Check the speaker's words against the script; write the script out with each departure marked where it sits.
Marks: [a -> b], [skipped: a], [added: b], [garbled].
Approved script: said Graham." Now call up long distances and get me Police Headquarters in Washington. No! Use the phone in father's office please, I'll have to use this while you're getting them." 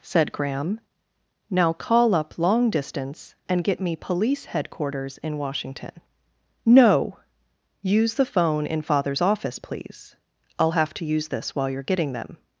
said Graham." Now call up long [distances -> distance] and get me Police Headquarters in Washington. No! Use the phone in father's office please, I'll have to use this while you're getting them."